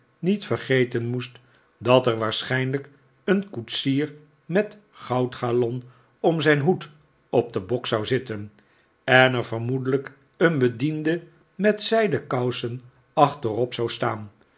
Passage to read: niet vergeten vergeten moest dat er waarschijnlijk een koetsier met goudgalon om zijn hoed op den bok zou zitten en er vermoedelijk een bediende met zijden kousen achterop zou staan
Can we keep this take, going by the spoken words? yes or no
no